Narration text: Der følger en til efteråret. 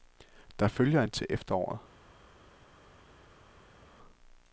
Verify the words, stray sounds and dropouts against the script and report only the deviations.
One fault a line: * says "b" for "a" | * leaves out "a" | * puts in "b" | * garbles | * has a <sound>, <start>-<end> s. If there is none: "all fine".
all fine